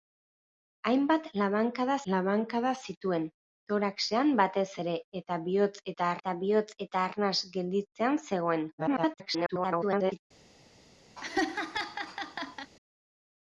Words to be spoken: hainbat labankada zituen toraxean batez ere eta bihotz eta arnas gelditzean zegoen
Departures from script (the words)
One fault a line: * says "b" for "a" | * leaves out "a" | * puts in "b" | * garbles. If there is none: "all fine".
* puts in "labankada"
* puts in "eta bihotz eta"
* garbles